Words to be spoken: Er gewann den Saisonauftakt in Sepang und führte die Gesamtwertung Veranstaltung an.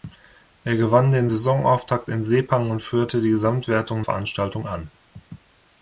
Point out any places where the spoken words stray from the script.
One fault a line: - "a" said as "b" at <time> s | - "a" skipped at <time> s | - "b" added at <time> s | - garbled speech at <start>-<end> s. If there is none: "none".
none